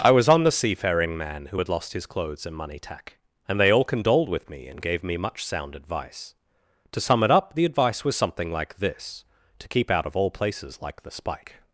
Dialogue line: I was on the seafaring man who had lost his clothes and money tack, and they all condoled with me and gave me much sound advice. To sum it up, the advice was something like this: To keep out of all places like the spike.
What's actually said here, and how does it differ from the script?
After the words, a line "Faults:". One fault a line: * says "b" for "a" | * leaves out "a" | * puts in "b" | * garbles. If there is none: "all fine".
I was on the seafaring man who had lost his clothes and money tack, and they all condoled with me and gave me much sound advice. To sum it up, the advice was something like this: To keep out of all places like the spike.
Faults:
all fine